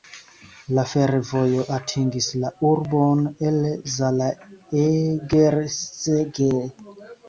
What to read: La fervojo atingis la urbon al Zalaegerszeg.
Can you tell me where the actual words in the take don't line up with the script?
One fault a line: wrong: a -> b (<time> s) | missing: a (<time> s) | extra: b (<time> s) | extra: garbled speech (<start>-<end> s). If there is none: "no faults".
wrong: al -> el (3.5 s)